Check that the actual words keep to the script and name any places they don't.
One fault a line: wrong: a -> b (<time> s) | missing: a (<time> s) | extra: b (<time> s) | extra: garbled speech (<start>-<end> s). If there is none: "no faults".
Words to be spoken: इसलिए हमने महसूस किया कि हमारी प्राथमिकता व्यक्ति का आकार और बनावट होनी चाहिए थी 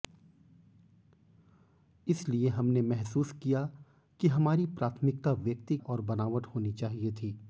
missing: का आकार (5.8 s)